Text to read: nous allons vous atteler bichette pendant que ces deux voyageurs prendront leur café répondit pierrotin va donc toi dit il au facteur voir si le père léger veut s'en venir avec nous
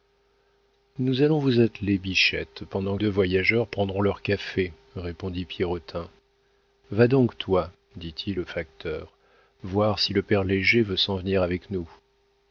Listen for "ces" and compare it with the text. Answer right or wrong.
wrong